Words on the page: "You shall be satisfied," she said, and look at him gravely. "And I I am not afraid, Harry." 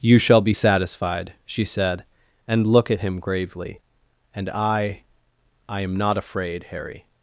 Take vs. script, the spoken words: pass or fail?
pass